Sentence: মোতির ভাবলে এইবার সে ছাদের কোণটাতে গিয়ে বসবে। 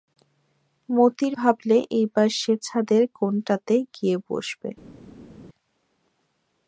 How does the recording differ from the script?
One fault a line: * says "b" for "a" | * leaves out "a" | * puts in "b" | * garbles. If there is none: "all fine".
all fine